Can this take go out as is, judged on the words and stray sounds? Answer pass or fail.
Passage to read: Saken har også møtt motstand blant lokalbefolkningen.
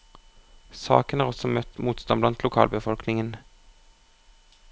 pass